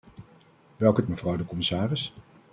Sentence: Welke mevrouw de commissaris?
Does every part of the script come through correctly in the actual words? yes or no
yes